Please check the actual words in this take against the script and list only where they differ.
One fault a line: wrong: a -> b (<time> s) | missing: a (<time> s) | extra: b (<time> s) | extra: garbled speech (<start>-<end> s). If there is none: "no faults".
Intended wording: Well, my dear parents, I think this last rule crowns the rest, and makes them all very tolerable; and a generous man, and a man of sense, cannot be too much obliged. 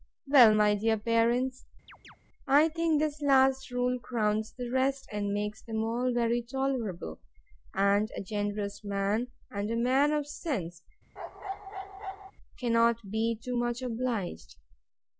no faults